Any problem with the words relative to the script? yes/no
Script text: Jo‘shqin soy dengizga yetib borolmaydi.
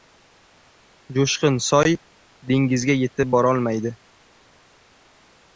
no